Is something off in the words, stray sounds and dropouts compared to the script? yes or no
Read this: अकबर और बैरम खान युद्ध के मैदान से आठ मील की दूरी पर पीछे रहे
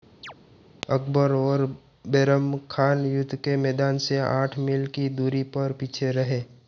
yes